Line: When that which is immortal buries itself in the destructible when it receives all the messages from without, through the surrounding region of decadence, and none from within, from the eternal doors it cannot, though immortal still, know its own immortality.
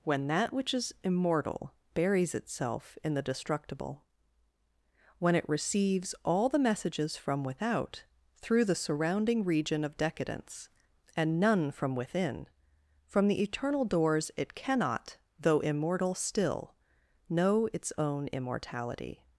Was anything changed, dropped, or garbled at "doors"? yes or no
no